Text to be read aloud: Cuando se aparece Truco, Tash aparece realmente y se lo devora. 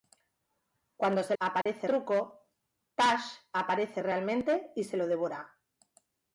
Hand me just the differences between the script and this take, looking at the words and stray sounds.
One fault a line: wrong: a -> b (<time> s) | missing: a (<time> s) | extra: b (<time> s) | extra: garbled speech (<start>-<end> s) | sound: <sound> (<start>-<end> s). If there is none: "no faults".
sound: dropout (1.6-1.7 s)